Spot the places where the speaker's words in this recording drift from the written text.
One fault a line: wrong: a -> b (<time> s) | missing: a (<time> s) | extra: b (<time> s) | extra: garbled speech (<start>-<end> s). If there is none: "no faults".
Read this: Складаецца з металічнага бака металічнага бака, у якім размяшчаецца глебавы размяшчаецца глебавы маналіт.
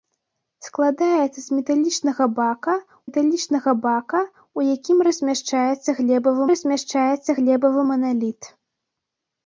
no faults